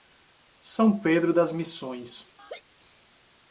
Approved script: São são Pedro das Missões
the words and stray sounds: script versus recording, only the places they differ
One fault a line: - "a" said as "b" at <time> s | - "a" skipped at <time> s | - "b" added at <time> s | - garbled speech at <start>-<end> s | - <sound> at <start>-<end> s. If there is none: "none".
- "são" skipped at 1.0 s
- laugh at 2.4-2.6 s